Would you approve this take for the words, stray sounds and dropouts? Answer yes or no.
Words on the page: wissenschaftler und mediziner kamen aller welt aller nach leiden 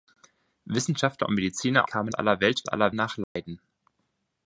no